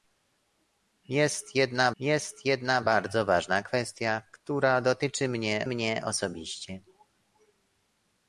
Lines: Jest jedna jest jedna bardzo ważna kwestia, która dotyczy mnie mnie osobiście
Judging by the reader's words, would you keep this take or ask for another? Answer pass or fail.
pass